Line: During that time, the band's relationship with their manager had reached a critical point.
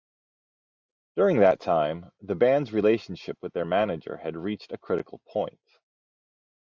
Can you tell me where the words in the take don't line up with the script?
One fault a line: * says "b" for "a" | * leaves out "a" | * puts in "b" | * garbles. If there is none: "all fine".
all fine